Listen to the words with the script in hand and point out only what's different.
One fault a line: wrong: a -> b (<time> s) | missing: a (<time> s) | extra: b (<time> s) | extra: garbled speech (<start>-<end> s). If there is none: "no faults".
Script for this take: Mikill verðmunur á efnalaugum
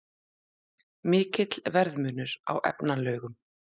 no faults